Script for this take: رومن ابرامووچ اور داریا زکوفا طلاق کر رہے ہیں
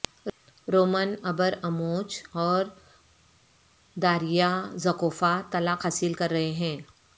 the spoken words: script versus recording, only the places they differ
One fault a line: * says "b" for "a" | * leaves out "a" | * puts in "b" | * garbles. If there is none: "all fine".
* puts in "حاصل"